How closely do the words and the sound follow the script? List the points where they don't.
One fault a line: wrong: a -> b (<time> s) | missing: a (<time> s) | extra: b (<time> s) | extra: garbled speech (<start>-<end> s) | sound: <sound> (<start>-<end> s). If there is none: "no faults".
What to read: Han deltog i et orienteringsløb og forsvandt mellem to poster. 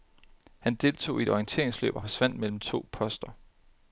no faults